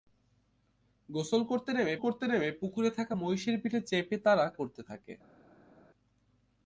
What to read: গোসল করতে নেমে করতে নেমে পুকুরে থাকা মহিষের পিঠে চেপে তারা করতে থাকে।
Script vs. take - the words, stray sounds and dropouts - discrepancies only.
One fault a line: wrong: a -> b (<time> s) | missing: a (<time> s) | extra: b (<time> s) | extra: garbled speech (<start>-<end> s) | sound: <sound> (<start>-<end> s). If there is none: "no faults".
no faults